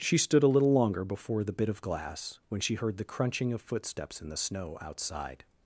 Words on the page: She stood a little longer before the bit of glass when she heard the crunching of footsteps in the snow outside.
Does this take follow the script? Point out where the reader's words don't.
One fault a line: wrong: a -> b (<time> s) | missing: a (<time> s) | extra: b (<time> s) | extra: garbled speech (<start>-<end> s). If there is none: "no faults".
no faults